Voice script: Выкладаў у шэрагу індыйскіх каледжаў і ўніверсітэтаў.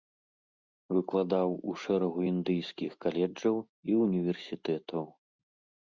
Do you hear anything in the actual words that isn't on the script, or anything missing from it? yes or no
no